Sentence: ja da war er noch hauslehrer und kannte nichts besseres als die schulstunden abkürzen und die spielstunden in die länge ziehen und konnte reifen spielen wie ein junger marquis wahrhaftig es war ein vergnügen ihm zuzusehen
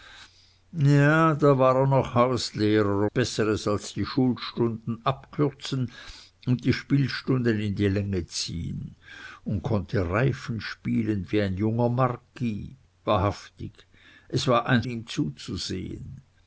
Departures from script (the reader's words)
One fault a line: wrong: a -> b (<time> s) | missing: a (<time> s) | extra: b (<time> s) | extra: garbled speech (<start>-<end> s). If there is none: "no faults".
missing: und kannte nichts (3.1 s)
missing: vergnügen (14.8 s)